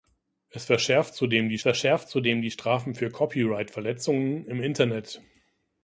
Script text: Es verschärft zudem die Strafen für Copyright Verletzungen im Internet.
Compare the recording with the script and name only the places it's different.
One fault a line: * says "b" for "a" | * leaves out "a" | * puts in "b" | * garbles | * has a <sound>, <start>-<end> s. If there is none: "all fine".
* puts in "verschärft zudem die"